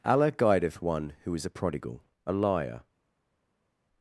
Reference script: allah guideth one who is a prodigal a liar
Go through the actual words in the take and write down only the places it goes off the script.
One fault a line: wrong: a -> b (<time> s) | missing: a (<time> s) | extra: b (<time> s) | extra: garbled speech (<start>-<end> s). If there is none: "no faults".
no faults